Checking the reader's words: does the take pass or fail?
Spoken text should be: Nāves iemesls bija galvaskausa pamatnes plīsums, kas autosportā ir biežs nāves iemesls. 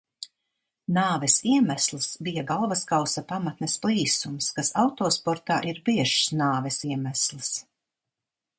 pass